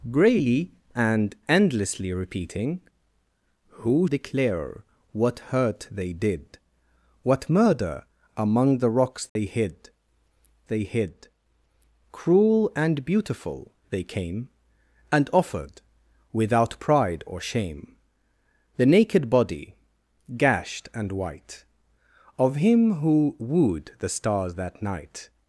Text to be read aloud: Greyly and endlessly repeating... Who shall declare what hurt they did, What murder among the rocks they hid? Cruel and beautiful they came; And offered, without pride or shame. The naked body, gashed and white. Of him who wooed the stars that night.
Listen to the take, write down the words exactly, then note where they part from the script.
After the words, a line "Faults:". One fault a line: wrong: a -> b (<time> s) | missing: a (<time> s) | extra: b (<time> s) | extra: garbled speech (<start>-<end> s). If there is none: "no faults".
Greyly and endlessly repeating... Who declare what hurt they did, What murder among the rocks they hid they hid? Cruel and beautiful they came; And offered, without pride or shame. The naked body, gashed and white. Of him who wooed the stars that night.
Faults:
missing: shall (4.1 s)
extra: they hid (10.6 s)